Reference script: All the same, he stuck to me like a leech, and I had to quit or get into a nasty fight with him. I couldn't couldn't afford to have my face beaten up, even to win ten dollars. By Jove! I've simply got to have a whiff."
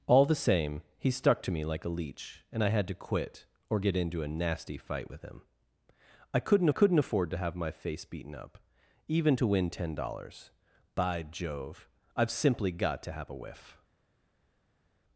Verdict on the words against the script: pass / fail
pass